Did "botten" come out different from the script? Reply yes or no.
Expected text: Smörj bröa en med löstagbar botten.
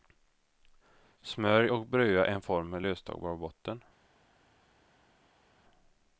no